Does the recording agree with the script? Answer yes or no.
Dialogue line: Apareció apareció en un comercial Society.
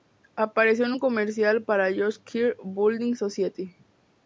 no